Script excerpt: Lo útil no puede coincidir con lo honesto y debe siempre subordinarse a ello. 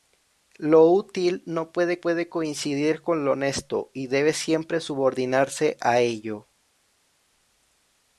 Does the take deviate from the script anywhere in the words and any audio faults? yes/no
yes